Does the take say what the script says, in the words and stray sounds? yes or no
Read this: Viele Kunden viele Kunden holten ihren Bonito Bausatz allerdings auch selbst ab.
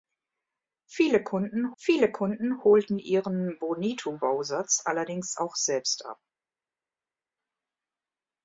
yes